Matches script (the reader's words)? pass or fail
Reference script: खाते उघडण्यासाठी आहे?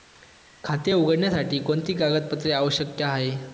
fail